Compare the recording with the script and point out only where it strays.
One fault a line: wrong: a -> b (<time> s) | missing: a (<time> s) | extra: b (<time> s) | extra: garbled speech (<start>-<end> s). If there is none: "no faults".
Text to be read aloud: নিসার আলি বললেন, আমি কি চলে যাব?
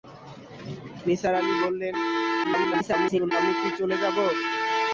extra: garbled speech (2.4-3.3 s)